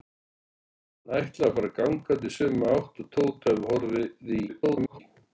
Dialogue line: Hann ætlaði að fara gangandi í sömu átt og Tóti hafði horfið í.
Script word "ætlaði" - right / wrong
right